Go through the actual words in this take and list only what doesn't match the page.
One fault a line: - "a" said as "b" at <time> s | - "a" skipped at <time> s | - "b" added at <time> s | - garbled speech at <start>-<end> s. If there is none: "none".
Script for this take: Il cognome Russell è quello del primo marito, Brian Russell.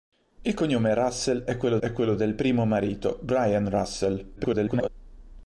- "è quello" added at 1.8 s
- garbled speech at 4.4-4.9 s